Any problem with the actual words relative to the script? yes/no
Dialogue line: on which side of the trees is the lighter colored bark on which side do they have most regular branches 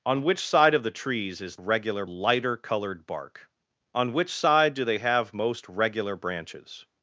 yes